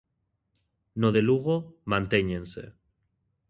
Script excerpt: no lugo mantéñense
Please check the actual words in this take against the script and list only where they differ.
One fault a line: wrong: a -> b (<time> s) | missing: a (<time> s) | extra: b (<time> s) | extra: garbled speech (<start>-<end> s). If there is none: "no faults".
extra: de (1.1 s)